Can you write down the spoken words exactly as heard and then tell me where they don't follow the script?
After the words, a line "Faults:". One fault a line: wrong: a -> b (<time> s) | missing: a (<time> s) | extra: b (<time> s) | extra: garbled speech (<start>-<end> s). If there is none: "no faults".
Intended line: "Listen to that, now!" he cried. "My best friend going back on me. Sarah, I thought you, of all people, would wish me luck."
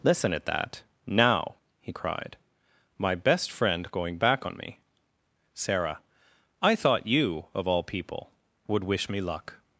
"Listen at that, now!" he cried. "My best friend going back on me. Sarah, I thought you, of all people, would wish me luck."
Faults:
wrong: to -> at (0.3 s)